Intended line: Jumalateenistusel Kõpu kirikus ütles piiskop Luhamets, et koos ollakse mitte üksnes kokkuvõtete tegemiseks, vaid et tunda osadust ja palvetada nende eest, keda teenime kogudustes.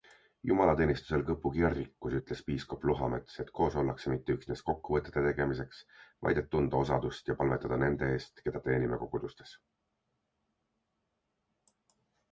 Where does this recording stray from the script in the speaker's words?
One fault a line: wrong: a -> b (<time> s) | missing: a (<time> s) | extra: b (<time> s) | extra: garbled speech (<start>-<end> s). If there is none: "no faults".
no faults